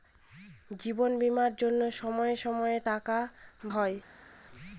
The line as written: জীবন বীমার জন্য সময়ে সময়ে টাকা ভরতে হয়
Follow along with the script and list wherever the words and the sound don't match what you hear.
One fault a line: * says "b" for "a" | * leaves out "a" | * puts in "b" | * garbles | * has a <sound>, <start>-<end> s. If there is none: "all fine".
* leaves out "ভরতে"